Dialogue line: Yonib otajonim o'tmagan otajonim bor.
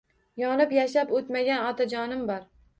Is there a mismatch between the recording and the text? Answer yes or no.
yes